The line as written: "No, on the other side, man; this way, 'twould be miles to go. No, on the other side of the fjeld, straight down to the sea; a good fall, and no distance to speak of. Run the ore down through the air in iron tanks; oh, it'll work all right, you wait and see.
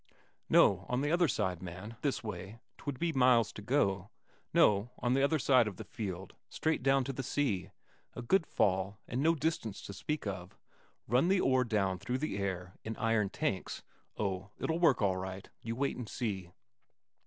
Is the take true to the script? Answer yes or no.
yes